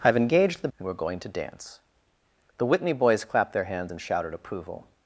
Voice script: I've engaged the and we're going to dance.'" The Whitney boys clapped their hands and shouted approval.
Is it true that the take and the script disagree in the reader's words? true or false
false